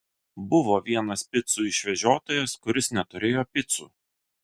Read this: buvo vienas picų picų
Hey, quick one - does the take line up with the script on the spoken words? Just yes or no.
no